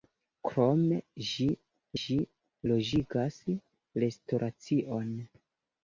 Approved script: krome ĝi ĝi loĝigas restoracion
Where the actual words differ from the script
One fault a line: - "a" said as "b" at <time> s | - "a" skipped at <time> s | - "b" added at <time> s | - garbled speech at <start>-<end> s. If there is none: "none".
none